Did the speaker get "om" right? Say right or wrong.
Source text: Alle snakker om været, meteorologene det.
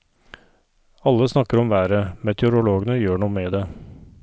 right